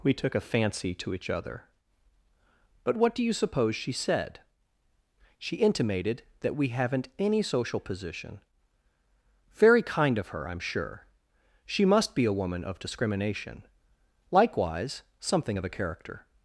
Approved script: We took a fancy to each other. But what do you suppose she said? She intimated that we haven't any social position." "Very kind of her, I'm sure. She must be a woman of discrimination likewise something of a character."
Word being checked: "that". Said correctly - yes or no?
yes